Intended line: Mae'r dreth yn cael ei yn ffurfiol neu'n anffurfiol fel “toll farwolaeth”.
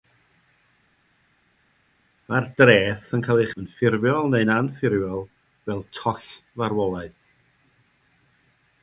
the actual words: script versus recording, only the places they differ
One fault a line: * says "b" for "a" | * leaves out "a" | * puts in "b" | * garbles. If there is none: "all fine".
all fine